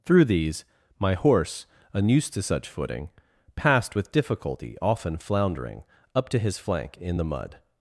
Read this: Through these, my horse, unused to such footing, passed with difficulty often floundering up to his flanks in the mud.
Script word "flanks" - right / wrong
wrong